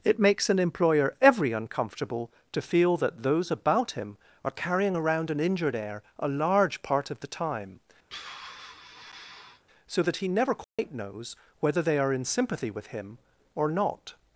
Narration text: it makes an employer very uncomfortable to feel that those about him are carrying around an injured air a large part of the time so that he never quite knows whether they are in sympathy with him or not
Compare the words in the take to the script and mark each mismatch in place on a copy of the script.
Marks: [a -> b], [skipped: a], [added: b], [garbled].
it makes an employer [very -> every] uncomfortable to feel that those about him are carrying around an injured air a large part of the time so that he never quite knows whether they are in sympathy with him or not